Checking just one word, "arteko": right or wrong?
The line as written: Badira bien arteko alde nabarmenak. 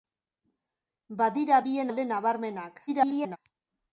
wrong